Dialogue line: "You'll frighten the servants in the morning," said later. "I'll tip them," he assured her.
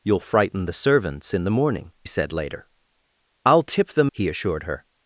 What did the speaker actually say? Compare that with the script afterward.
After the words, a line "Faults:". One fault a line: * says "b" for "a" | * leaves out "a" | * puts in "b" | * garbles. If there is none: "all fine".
"You'll frighten the servants in the morning," said later. "I'll tip them," he assured her.
Faults:
all fine